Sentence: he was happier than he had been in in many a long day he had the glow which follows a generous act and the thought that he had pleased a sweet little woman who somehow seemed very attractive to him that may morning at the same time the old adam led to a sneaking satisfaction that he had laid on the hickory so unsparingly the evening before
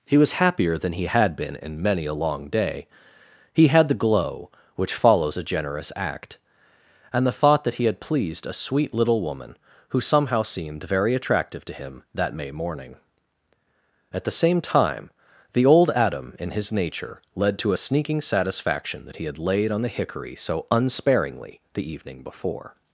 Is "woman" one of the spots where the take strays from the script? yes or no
no